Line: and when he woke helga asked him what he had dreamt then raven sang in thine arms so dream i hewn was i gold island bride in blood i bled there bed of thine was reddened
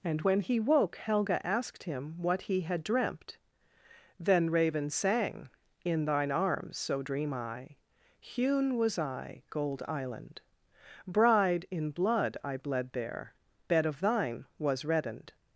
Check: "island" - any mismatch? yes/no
no